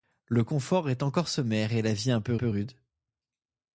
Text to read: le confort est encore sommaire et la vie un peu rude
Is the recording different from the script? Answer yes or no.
yes